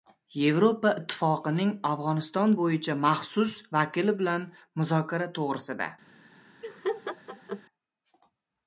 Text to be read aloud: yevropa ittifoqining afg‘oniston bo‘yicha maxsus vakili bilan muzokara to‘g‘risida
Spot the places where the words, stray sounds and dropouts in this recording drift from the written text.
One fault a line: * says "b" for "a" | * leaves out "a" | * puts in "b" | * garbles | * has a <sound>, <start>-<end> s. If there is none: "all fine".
* has a laugh, 6.6-7.6 s